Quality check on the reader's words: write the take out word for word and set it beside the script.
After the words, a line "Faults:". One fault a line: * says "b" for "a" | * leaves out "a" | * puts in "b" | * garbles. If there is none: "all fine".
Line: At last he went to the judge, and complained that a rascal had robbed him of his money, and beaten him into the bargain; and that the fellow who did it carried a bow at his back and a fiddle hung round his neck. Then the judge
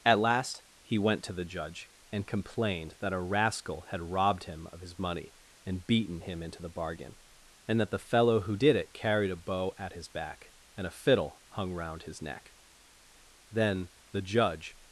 At last he went to the judge, and complained that a rascal had robbed him of his money, and beaten him into the bargain; and that the fellow who did it carried a bow at his back and a fiddle hung round his neck. Then the judge
Faults:
all fine